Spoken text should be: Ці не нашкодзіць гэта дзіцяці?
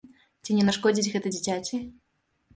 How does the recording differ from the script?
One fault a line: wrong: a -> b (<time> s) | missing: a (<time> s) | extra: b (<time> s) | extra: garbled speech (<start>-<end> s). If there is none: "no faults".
no faults